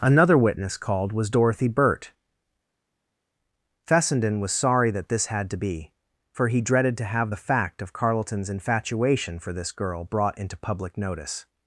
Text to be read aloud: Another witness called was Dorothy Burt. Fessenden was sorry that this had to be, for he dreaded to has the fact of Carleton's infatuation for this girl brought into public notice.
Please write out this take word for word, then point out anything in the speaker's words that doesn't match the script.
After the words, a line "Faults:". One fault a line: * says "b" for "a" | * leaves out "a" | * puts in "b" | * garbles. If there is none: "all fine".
Another witness called was Dorothy Burt. Fessenden was sorry that this had to be, for he dreaded to have the fact of Carleton's infatuation for this girl brought into public notice.
Faults:
* says "have" for "has"